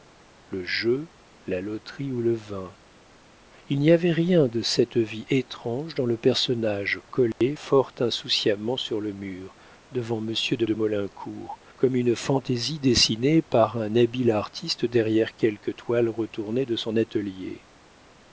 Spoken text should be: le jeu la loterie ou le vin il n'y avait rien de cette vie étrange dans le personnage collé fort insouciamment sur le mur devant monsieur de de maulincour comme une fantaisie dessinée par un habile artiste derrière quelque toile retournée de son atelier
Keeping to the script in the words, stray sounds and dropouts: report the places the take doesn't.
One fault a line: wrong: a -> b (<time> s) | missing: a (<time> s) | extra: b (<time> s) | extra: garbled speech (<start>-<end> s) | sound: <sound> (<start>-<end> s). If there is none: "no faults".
sound: dropout (7.3-7.4 s)